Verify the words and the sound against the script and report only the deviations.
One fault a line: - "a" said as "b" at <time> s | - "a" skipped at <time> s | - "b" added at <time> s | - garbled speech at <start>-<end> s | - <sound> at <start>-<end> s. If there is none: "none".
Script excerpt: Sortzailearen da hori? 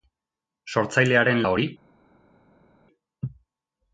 none